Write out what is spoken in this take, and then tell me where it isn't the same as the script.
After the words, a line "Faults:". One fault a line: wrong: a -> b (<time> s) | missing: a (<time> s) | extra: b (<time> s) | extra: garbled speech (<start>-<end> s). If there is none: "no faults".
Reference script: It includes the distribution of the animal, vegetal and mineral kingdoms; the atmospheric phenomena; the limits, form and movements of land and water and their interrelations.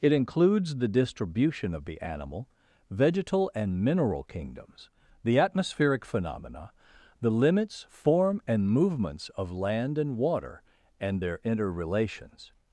It includes the distribution of the animal, vegetal and mineral kingdoms; the atmospheric phenomena; the limits, form and movements of land and water and their interrelations.
Faults:
no faults